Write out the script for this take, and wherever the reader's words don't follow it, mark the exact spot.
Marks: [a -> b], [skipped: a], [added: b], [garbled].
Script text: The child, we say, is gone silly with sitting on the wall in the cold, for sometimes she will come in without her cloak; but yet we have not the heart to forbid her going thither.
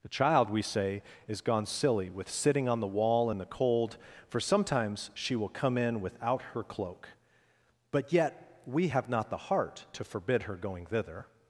The child, we say, is gone silly with sitting on the wall in the cold, for sometimes she will come in without her cloak; but yet we have not the heart to forbid her going thither.